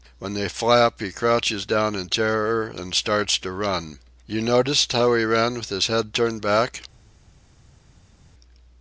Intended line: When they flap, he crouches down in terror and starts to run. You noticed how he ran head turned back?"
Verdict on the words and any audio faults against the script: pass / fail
fail